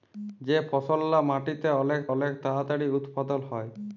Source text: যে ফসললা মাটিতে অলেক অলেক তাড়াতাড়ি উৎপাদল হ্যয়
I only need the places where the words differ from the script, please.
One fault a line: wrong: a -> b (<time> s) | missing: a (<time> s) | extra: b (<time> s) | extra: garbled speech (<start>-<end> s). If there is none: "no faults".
no faults